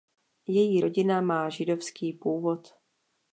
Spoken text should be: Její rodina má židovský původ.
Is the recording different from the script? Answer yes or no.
no